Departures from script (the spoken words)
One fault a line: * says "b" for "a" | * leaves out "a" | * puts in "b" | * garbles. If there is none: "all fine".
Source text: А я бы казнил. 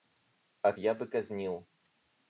all fine